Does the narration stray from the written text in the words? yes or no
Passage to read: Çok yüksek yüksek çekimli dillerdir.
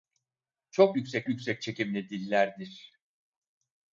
no